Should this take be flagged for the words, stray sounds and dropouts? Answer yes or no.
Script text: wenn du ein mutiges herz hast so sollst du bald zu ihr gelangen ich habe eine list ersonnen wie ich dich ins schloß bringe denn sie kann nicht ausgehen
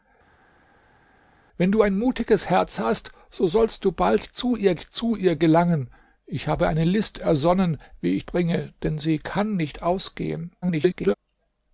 yes